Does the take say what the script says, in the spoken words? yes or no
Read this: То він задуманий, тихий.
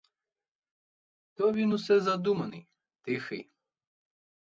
no